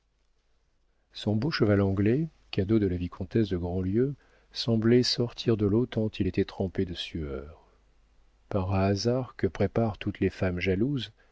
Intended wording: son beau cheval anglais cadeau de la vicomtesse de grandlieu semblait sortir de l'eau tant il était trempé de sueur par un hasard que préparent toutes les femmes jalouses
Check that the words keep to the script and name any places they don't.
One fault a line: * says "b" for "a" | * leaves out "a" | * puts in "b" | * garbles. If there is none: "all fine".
all fine